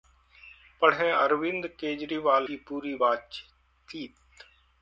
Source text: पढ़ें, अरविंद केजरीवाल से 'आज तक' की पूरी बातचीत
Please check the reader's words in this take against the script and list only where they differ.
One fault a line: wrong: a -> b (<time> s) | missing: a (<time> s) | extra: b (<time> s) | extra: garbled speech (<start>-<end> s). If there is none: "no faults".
missing: से आज तक (2.5 s)